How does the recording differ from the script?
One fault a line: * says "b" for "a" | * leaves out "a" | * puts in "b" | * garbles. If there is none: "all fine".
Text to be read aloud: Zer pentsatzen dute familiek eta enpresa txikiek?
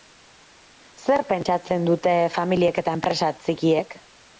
all fine